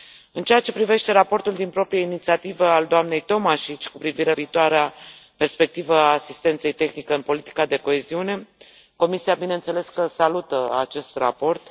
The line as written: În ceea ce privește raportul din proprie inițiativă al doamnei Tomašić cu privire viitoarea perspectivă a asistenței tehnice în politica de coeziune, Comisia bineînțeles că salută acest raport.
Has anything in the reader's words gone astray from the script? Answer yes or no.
no